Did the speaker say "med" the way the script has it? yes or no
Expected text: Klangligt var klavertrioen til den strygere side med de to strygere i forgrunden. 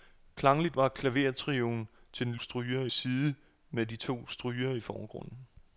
yes